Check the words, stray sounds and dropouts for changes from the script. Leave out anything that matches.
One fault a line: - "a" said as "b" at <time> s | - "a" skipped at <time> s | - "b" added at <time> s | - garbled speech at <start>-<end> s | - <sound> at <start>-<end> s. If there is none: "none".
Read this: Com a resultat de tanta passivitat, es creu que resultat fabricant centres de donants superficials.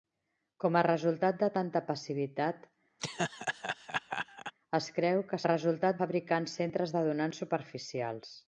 - laugh at 3.0-4.5 s